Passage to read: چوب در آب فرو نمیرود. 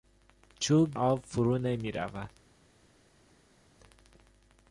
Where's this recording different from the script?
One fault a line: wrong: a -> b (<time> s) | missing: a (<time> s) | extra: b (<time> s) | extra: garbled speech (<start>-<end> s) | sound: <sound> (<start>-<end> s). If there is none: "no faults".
missing: در (0.9 s)